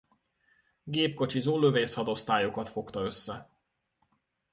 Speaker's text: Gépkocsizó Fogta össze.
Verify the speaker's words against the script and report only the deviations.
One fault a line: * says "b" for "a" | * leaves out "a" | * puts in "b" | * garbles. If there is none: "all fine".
* puts in "Lövészhadosztályokat"